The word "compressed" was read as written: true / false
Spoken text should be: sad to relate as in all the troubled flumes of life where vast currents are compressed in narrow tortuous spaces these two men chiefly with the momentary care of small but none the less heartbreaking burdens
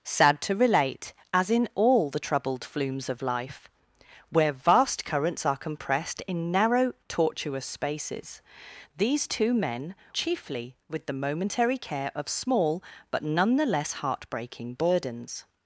true